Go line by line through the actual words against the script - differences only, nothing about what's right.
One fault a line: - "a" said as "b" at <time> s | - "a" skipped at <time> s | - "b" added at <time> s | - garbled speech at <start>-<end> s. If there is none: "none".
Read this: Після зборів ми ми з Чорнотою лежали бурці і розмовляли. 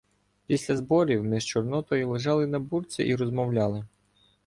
- "ми" skipped at 1.4 s
- "на" added at 2.5 s